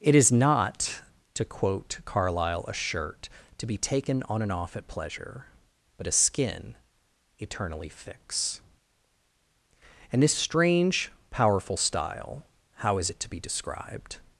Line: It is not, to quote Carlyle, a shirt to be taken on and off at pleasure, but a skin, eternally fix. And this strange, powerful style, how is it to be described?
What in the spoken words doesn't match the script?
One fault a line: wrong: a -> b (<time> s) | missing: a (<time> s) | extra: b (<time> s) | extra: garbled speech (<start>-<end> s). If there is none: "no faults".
no faults